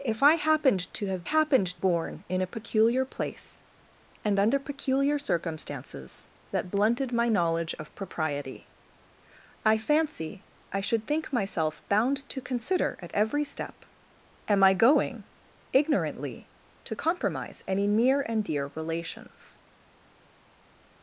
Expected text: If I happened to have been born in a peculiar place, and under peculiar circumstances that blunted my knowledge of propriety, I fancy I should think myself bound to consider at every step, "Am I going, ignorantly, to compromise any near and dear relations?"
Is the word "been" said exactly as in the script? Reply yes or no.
no